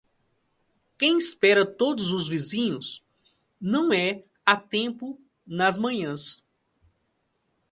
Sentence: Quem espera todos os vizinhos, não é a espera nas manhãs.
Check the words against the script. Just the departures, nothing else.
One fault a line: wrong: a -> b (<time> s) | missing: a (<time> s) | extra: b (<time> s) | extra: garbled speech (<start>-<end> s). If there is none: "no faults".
wrong: espera -> tempo (4.5 s)